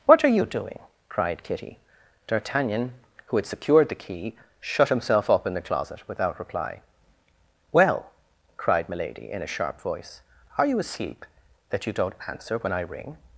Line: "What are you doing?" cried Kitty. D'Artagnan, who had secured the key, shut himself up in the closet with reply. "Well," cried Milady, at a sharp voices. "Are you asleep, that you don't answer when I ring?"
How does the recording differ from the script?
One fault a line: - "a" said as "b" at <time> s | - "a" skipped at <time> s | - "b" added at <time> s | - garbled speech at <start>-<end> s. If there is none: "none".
- "with" said as "without" at 6.1 s
- "at" said as "in" at 9.3 s
- "voices" said as "voice" at 9.8 s